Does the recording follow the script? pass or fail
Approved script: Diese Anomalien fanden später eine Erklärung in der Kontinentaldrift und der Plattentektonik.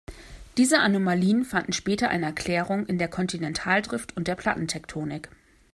pass